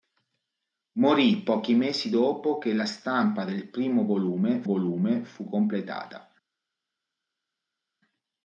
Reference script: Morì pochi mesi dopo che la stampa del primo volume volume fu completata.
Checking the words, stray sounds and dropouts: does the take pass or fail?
pass